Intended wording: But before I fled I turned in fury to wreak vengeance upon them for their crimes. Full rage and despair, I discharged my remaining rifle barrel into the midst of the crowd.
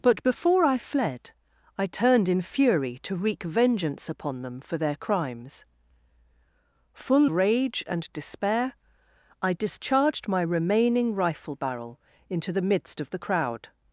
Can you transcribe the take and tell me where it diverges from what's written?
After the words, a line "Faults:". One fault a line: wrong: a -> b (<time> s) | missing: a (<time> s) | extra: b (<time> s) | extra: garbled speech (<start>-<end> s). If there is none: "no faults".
But before I fled I turned in fury to wreak vengeance upon them for their crimes. Full rage and despair, I discharged my remaining rifle barrel into the midst of the crowd.
Faults:
no faults